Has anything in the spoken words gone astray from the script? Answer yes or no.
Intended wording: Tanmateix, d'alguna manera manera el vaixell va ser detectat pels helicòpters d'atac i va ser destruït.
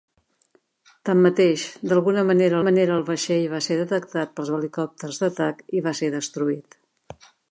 no